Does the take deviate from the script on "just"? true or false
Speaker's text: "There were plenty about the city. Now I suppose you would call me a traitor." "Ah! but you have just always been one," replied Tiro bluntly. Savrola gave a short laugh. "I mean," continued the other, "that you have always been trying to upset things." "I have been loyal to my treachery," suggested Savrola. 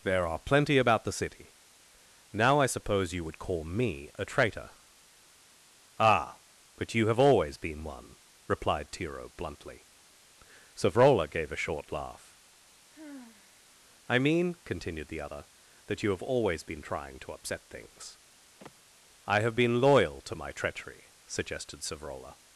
true